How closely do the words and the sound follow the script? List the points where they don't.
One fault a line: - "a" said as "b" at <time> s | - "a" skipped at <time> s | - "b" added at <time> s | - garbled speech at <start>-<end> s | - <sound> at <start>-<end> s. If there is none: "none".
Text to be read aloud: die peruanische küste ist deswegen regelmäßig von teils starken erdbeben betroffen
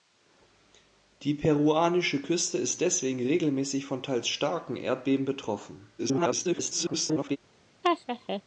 - garbled speech at 6.0-7.4 s
- laugh at 7.8-8.4 s